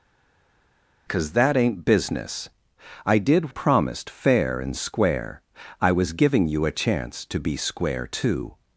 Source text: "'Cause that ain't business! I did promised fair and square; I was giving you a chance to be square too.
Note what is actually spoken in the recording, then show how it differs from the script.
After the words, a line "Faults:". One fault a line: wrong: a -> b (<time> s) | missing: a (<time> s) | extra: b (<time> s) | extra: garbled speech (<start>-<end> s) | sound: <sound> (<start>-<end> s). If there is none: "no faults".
"'Cause that ain't business! I did promised fair and square; I was giving you a chance to be square too.
Faults:
no faults